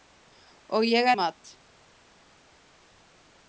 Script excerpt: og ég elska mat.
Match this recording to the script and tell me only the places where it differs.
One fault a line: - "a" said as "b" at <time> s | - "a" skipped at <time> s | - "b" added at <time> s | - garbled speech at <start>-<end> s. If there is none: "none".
- "elska" skipped at 1.1 s